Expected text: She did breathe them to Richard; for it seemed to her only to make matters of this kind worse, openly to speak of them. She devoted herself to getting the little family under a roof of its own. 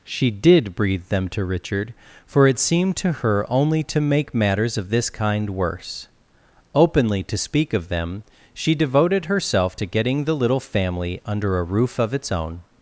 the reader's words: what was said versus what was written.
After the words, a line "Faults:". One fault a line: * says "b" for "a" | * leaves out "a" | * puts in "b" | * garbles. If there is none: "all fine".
She did breathe them to Richard; for it seemed to her only to make matters of this kind worse, openly to speak of them. She devoted herself to getting the little family under a roof of its own.
Faults:
all fine